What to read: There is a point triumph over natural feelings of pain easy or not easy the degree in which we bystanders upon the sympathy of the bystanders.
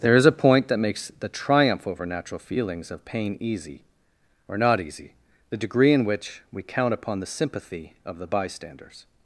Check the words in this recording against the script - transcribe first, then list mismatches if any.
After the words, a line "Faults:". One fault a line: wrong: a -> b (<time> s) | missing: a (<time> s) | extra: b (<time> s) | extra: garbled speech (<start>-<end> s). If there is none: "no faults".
There is a point that makes the triumph over natural feelings of pain easy or not easy the degree in which we count upon the sympathy of the bystanders.
Faults:
extra: that makes the (0.7 s)
wrong: bystanders -> count (6.6 s)